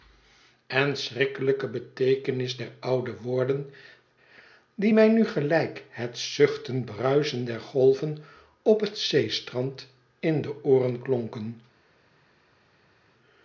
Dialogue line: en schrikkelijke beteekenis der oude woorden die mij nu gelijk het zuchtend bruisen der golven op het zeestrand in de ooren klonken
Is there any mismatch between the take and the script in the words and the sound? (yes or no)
no